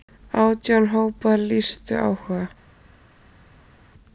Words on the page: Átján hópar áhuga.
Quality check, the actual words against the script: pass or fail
fail